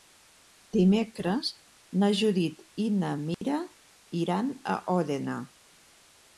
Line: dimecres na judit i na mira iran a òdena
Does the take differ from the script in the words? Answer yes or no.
no